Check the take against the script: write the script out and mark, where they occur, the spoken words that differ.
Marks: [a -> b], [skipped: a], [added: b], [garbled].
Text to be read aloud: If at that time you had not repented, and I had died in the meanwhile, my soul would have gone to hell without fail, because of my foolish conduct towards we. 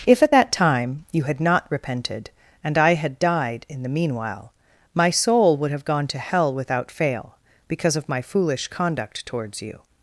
If at that time you had not repented, and I had died in the meanwhile, my soul would have gone to hell without fail, because of my foolish conduct towards [we. -> you]